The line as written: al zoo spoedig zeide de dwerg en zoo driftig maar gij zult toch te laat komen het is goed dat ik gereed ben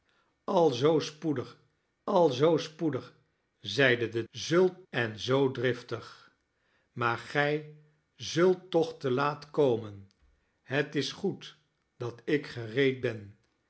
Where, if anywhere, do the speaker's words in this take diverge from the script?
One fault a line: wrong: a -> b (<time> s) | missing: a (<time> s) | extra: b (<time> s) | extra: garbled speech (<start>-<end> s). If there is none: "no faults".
extra: al zoo spoedig (2.0 s)
wrong: dwerg -> zult (4.3 s)